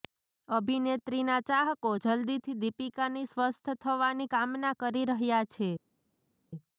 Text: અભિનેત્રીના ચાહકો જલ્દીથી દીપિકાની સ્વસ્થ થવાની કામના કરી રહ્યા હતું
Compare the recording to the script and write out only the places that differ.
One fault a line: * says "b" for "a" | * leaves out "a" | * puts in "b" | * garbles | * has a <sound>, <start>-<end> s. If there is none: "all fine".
* says "છે" for "હતું"